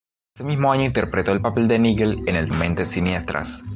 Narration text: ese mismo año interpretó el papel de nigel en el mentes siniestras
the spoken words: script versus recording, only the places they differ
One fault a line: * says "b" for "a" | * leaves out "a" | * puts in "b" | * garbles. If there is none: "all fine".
all fine